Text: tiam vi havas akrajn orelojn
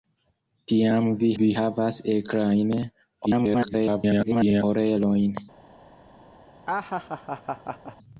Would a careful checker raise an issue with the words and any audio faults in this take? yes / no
yes